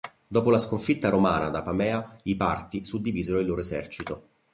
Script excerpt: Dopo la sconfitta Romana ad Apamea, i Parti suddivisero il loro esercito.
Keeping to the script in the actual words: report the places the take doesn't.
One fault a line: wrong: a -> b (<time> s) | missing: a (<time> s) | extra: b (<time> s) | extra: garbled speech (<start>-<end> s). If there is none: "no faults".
no faults